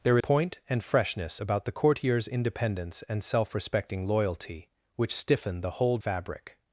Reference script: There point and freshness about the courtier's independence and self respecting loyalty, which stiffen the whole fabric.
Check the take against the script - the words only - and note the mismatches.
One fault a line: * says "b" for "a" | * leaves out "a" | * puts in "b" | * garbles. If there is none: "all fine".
all fine